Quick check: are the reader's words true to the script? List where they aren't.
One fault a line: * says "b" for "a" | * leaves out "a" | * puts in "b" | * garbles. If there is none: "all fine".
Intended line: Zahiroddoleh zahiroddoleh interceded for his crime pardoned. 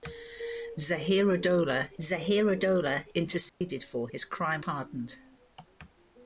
all fine